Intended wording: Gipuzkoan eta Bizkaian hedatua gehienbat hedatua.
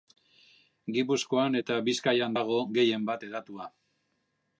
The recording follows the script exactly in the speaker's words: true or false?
false